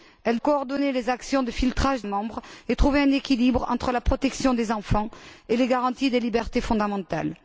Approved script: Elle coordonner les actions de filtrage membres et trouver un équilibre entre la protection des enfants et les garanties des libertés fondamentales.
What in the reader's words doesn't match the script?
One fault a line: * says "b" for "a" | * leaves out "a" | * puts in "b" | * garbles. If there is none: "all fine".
all fine